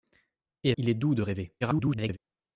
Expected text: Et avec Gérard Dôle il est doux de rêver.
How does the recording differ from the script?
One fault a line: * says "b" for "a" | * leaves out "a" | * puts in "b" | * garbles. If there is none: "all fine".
* leaves out "avec Gérard Dôle"
* garbles